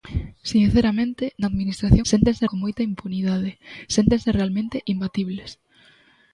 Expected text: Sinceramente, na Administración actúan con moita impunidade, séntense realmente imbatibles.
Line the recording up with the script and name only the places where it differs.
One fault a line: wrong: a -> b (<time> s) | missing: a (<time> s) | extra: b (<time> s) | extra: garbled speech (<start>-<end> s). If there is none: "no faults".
wrong: actúan -> séntense (2.1 s)